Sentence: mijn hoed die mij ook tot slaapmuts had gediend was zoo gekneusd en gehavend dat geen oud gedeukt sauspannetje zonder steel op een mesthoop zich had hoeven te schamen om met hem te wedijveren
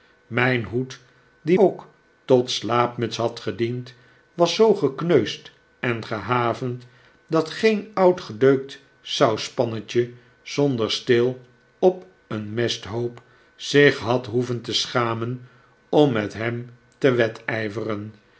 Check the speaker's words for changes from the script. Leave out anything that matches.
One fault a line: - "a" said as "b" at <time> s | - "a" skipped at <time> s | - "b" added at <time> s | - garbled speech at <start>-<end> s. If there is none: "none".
- "mij" skipped at 1.6 s